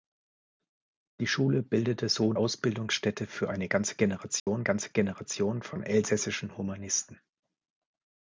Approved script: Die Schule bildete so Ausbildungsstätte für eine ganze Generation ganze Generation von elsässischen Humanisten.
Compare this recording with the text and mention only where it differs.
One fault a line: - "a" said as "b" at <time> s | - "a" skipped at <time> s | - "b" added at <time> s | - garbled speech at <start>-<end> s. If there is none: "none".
none